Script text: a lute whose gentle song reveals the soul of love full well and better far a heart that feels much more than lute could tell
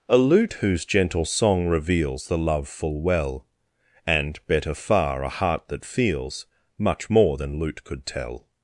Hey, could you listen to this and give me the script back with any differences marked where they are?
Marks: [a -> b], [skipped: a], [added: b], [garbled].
a lute whose gentle song reveals the [skipped: soul of] love full well and better far a heart that feels much more than lute could tell